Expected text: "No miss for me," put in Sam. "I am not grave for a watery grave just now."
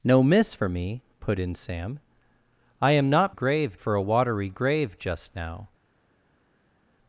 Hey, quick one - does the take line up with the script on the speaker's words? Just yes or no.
yes